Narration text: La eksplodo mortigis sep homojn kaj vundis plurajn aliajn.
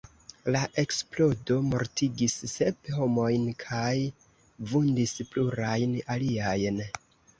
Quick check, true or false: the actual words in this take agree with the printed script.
true